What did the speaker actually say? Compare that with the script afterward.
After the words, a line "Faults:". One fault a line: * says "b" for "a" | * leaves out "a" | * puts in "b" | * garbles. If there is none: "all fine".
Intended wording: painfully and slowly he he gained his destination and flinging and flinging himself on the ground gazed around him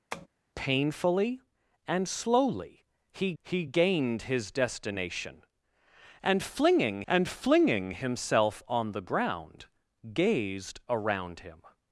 painfully and slowly he he gained his destination and flinging and flinging himself on the ground gazed around him
Faults:
all fine